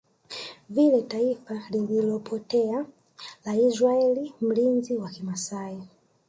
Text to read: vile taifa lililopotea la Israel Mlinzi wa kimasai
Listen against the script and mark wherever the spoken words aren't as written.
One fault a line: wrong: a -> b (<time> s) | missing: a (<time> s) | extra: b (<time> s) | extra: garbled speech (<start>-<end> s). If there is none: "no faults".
no faults